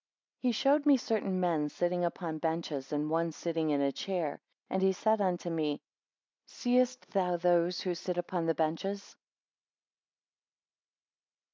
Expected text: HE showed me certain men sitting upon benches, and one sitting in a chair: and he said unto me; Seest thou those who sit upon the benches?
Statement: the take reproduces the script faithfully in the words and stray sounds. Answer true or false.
true